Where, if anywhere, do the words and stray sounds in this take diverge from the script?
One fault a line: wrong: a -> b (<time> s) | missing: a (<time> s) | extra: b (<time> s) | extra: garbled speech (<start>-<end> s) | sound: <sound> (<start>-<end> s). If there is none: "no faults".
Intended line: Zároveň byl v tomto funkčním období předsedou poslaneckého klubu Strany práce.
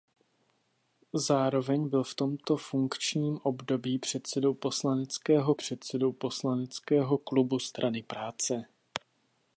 extra: předsedou poslaneckého (5.5 s)